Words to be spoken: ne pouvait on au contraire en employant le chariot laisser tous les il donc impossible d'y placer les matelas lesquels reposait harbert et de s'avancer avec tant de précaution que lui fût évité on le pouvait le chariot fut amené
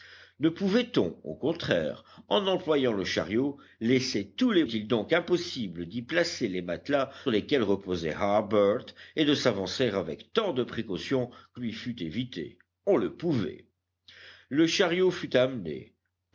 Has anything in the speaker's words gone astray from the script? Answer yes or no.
no